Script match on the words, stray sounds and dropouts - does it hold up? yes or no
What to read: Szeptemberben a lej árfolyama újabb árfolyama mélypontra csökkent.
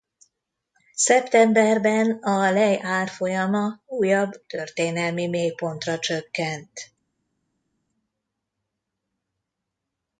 no